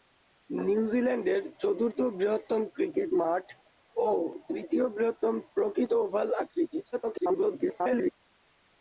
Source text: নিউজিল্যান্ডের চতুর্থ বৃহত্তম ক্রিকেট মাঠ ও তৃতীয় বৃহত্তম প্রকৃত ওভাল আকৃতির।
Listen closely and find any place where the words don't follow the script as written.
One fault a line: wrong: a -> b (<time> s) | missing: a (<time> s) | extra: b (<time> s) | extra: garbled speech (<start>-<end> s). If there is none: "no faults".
extra: garbled speech (6.9-8.1 s)